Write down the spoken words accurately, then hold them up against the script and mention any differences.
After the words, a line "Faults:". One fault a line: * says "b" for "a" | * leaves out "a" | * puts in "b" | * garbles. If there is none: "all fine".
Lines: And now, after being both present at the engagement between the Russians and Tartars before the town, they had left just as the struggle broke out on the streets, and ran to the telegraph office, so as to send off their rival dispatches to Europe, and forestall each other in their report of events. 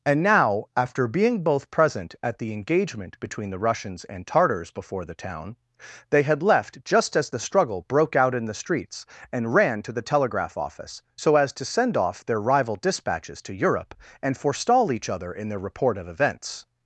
And now, after being both present at the engagement between the Russians and Tartars before the town, they had left just as the struggle broke out in the streets, and ran to the telegraph office, so as to send off their rival dispatches to Europe, and forestall each other in their report of events.
Faults:
* says "in" for "on"